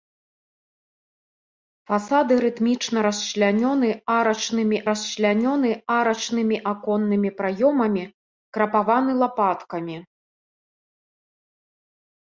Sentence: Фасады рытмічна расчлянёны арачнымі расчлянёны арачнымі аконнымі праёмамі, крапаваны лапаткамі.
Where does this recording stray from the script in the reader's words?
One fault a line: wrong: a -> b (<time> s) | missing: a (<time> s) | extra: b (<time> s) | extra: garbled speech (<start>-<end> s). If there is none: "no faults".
no faults